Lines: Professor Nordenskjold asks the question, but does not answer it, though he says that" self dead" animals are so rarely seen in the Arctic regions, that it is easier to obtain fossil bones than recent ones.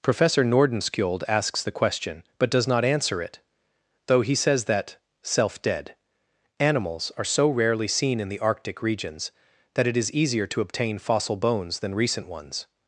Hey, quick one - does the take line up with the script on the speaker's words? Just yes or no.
yes